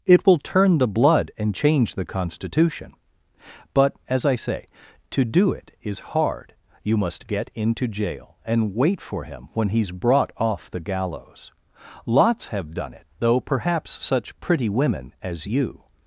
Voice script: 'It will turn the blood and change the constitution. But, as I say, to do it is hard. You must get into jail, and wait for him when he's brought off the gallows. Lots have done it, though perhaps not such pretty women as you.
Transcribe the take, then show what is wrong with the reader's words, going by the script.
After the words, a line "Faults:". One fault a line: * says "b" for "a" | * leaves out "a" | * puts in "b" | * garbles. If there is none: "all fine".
'It will turn the blood and change the constitution. But, as I say, to do it is hard. You must get into jail, and wait for him when he's brought off the gallows. Lots have done it, though perhaps such pretty women as you.
Faults:
* leaves out "not"